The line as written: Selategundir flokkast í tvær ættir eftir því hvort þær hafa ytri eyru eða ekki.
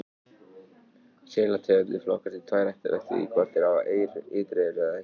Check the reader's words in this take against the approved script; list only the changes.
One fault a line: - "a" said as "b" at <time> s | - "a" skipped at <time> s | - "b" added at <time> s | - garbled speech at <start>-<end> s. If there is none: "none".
none